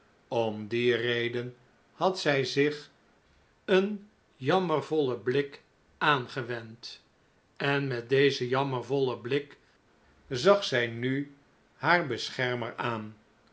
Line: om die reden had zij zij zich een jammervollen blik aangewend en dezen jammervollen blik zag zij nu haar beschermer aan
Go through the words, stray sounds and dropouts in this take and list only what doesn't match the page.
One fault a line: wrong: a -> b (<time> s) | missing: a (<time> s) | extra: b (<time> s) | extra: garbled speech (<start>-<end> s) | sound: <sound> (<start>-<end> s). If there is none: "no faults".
missing: zij (2.5 s)
extra: met (7.9 s)